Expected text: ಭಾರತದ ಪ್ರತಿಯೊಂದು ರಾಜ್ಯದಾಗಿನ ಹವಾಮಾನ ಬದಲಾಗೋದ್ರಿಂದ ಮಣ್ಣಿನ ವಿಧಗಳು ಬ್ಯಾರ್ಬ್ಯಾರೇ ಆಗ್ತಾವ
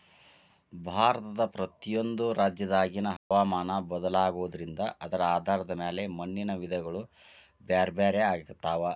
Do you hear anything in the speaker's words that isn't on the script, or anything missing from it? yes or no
yes